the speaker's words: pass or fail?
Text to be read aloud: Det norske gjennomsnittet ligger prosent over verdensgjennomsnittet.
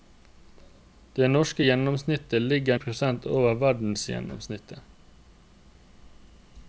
pass